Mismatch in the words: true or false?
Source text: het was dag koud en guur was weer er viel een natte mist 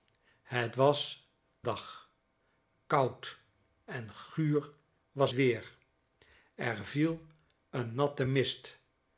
false